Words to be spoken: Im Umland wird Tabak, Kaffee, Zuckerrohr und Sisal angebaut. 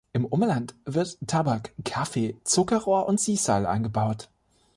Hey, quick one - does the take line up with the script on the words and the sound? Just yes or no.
yes